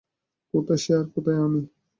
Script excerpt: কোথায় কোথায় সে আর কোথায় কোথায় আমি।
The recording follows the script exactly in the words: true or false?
false